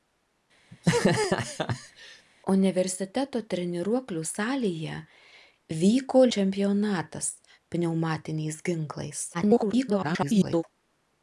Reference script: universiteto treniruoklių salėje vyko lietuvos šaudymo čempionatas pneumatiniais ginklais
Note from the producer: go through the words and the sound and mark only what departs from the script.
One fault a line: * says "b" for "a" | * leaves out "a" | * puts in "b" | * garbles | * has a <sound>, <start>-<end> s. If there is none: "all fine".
* has a laugh, 0.7-2.3 s
* leaves out "lietuvos šaudymo"
* garbles